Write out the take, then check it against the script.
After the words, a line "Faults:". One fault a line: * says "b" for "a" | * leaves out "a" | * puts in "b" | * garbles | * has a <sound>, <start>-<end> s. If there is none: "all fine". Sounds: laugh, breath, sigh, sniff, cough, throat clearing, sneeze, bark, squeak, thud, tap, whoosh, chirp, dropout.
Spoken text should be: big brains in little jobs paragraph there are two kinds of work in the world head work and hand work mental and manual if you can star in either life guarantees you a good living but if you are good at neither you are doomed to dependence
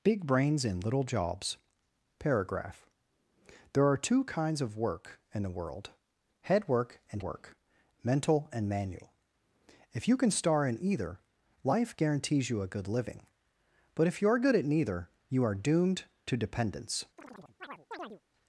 big brains in little jobs paragraph there are two kinds of work in the world head work and work mental and manual if you can star in either life guarantees you a good living but if you are good at neither you are doomed to dependence
Faults:
* leaves out "hand"
* has a chirp, 17.2-18.2 s